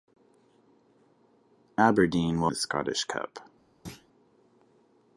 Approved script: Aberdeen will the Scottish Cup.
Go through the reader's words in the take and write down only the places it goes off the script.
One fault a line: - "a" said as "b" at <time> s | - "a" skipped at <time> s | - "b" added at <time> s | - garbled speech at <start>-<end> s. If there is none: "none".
none